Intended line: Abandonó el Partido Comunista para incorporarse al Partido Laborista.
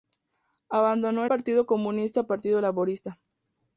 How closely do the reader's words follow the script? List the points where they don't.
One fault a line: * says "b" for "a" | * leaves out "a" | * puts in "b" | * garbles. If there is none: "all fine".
* leaves out "el"
* leaves out "para incorporarse al"